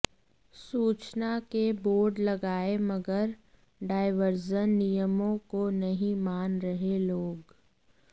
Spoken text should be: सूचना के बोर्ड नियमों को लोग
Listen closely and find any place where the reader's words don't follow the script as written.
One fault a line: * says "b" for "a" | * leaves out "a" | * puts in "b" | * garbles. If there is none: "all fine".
* puts in "लगाए मगर डायवर्जन"
* puts in "नहीं मान रहे"